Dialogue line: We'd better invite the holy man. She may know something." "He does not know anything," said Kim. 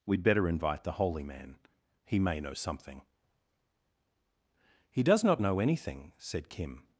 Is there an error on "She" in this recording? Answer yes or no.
yes